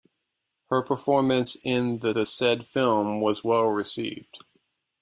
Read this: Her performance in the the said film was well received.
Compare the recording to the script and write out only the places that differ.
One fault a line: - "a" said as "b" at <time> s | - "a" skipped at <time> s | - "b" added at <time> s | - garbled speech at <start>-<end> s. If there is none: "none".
none